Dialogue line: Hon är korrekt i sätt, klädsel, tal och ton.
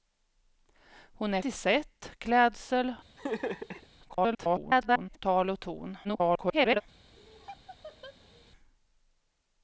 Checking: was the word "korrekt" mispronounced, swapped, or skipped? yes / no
yes